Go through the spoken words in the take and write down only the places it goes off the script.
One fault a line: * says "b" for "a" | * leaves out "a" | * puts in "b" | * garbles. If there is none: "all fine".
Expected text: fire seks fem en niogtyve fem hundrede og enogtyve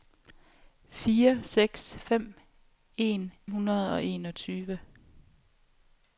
* leaves out "niogtyve fem"